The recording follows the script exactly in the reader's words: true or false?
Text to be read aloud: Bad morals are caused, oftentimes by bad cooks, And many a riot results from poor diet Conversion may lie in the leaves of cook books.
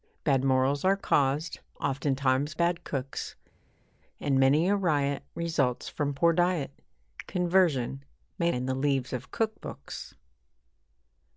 false